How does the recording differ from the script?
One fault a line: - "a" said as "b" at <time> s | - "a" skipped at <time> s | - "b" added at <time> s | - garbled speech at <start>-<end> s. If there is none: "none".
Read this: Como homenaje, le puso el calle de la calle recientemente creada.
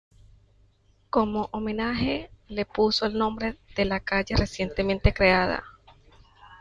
- "calle" said as "nombre" at 3.2 s